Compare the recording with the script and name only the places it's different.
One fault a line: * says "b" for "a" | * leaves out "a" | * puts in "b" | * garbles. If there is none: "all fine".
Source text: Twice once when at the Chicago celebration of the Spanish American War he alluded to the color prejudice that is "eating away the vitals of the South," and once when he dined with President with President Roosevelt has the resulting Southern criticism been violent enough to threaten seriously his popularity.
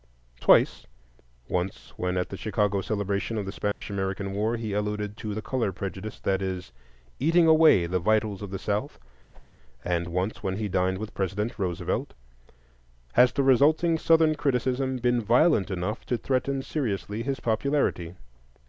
* leaves out "with President"